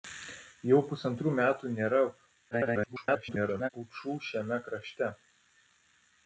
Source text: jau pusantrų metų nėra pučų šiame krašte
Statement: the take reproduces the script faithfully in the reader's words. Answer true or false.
false